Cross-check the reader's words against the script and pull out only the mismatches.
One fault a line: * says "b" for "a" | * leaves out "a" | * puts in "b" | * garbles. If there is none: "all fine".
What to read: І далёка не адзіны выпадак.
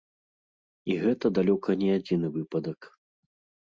* puts in "гэта"